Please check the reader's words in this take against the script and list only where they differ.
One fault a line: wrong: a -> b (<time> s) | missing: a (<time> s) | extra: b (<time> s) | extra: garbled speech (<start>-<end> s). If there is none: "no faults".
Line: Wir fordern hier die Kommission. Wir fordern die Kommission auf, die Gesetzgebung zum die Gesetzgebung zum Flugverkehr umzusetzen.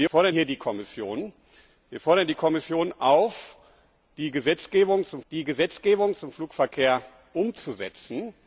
no faults